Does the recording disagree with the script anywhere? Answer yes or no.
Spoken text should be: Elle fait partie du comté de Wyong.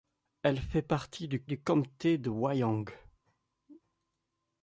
yes